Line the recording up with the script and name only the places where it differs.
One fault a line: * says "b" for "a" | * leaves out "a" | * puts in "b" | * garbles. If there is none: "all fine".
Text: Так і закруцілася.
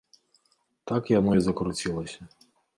* puts in "яно"